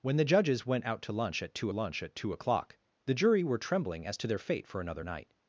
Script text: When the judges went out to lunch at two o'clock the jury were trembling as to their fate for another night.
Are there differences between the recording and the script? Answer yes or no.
yes